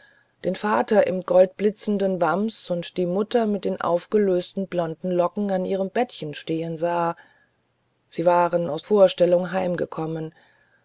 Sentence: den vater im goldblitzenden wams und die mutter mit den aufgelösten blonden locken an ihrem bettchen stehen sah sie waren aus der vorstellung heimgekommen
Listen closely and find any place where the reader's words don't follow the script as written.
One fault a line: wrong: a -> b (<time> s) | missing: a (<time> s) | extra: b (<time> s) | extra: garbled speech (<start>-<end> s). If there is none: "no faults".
missing: der (8.8 s)